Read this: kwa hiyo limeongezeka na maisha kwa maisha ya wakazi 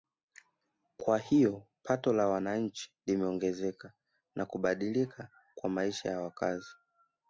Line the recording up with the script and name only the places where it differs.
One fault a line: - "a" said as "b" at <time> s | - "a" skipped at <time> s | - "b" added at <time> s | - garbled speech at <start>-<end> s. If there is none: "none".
- "pato la wananchi" added at 1.8 s
- "maisha" said as "kubadilika" at 4.5 s